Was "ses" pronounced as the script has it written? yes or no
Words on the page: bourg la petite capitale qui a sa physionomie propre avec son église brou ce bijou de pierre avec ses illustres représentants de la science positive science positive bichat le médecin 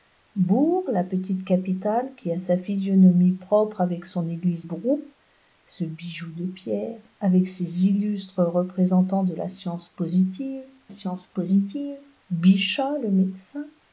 yes